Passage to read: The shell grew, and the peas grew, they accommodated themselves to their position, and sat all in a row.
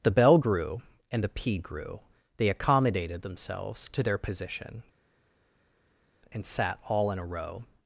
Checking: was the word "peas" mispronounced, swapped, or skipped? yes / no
yes